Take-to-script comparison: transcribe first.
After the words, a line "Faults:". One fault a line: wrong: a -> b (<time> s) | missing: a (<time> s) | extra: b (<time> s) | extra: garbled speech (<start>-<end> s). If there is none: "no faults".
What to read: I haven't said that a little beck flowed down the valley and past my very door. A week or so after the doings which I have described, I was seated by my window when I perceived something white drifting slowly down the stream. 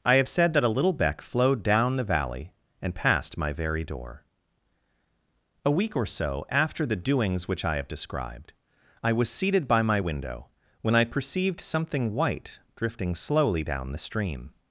I have said that a little beck flowed down the valley and past my very door. A week or so after the doings which I have described, I was seated by my window when I perceived something white drifting slowly down the stream.
Faults:
wrong: haven't -> have (0.1 s)